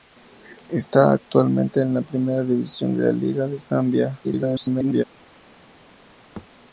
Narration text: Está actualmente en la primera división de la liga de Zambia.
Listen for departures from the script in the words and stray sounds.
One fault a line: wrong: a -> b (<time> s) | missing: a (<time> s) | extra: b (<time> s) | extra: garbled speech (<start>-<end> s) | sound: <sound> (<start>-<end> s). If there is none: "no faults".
extra: garbled speech (4.2-5.0 s)
sound: thud (6.4-6.5 s)